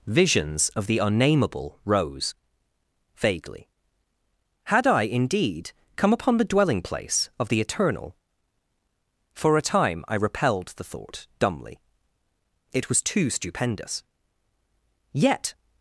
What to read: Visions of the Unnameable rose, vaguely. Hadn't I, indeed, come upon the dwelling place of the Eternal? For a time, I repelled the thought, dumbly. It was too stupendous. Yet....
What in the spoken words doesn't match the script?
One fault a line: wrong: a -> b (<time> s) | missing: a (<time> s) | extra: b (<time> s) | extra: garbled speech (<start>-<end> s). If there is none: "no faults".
wrong: Hadn't -> Had (4.7 s)